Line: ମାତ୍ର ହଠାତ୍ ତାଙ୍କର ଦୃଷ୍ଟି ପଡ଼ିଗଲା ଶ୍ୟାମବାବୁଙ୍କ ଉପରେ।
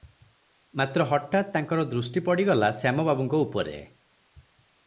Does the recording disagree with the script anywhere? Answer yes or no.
no